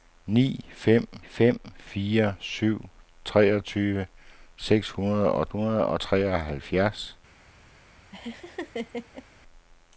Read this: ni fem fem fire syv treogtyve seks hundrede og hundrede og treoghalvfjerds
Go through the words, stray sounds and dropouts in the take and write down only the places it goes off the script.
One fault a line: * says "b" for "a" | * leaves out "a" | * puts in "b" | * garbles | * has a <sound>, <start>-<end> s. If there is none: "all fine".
* has a laugh, 8.1-9.2 s